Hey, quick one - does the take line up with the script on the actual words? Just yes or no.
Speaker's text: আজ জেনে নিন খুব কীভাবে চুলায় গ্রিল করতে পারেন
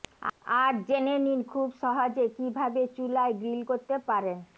no